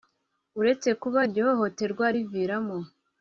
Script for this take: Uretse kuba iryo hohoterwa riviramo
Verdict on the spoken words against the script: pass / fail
pass